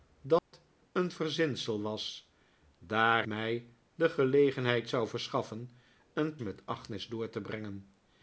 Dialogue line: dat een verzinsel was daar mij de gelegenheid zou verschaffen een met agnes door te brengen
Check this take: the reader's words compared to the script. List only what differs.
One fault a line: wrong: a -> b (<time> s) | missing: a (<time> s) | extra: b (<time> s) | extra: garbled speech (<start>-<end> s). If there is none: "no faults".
no faults